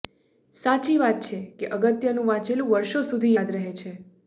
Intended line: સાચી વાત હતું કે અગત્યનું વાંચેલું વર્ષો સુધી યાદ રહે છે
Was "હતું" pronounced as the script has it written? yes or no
no